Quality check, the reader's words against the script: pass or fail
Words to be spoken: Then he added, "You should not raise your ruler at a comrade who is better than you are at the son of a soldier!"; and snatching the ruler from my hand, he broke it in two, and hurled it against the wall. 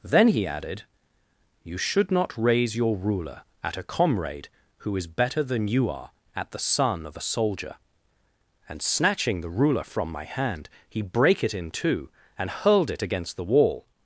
fail